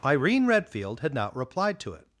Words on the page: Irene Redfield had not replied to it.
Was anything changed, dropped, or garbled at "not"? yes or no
no